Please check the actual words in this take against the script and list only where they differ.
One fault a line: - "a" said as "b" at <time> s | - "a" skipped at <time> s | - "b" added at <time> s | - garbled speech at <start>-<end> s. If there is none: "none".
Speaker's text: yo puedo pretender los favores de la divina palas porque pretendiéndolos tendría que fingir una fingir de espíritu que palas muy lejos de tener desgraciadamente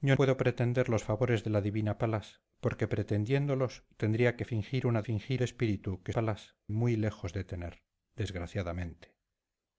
none